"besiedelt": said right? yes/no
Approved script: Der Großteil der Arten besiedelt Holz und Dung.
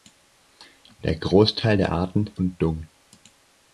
no